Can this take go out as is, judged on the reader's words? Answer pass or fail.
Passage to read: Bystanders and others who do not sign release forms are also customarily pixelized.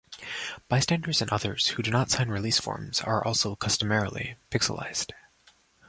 pass